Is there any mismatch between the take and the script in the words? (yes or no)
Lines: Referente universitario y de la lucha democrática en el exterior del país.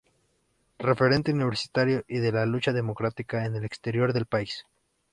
no